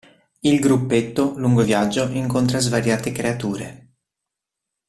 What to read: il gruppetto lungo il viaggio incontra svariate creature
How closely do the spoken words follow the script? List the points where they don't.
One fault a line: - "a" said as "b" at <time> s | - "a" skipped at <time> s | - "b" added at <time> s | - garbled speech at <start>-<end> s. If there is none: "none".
none